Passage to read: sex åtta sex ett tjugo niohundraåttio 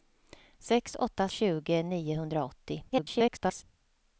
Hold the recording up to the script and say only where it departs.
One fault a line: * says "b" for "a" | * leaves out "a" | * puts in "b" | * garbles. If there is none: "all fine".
* leaves out "sex ett"
* garbles